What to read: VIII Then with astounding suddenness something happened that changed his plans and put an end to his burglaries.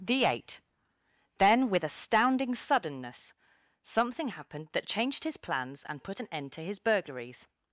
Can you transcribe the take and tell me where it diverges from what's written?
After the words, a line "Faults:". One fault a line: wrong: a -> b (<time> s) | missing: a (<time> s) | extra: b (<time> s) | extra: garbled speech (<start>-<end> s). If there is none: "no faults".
The eight Then with astounding suddenness something happened that changed his plans and put an end to his burglaries.
Faults:
wrong: VIII -> The eight (0.0 s)